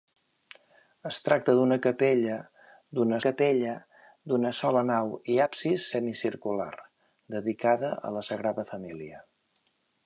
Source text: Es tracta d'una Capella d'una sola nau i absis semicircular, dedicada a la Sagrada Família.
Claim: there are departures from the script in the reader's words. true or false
true